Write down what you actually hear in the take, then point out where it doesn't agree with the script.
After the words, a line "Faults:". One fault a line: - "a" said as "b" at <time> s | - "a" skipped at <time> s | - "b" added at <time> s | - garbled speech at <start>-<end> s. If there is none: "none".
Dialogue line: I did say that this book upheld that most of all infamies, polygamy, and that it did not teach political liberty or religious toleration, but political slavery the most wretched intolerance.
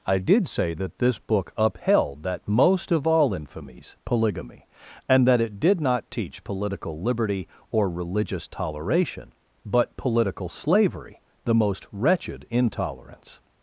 I did say that this book upheld that most of all infamies, polygamy, and that it did not teach political liberty or religious toleration, but political slavery the most wretched intolerance.
Faults:
none